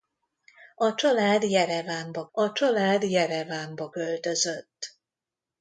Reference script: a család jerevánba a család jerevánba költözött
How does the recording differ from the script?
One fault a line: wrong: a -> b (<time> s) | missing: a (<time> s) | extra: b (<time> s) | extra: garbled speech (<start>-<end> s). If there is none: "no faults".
no faults